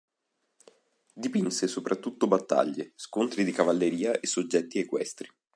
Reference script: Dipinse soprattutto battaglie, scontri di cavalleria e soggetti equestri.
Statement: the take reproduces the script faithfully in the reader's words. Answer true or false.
true